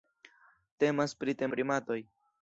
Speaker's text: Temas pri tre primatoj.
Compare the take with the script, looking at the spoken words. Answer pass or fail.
pass